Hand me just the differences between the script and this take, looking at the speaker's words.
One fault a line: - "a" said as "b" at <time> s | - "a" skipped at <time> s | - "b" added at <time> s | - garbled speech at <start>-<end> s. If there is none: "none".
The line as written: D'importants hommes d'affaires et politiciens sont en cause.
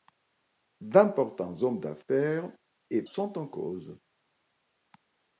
- "politiciens" skipped at 3.0 s